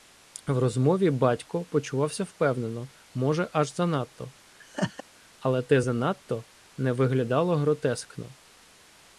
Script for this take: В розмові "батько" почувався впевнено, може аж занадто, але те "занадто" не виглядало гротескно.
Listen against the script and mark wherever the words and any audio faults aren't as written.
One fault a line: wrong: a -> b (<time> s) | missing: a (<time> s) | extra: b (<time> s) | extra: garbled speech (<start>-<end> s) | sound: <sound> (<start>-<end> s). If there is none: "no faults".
sound: laugh (4.6-5.0 s)